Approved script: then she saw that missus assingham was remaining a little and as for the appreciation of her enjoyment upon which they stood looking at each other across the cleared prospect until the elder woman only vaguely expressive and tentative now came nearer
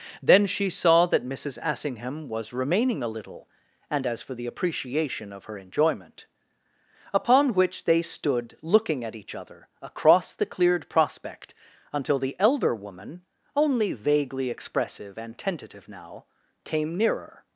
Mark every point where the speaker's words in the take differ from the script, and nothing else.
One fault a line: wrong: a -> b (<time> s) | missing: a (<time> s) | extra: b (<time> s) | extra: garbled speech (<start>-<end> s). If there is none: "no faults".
no faults